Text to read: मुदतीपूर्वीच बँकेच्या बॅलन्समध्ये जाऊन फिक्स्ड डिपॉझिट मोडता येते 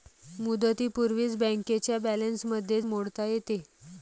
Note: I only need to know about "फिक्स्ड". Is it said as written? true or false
false